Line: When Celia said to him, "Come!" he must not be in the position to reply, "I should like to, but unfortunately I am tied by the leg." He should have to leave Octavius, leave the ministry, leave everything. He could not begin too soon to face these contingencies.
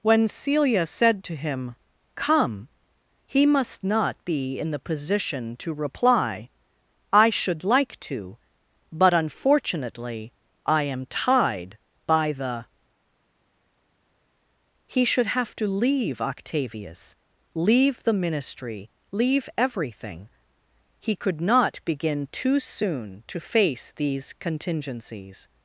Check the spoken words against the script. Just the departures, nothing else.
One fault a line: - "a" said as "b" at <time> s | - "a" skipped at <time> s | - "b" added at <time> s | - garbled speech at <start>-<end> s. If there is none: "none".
- "leg" skipped at 12.7 s